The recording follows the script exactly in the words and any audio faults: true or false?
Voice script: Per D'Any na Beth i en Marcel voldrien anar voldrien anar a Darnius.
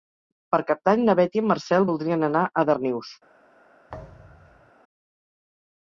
false